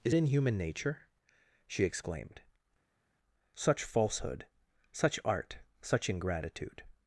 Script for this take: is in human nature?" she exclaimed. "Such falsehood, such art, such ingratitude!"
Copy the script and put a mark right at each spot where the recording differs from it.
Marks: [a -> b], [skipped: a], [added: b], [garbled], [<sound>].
is in human nature?" she exclaimed. "Such falsehood, such art, such ingratitude!"